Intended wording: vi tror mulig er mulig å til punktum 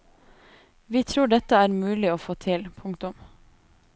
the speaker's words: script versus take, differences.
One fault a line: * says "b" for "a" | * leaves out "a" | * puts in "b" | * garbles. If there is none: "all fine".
* says "dette" for "mulig"
* puts in "få"